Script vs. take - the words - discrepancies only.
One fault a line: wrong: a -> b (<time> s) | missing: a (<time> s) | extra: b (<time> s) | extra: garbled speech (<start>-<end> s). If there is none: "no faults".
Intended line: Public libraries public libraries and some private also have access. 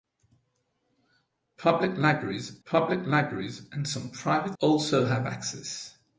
no faults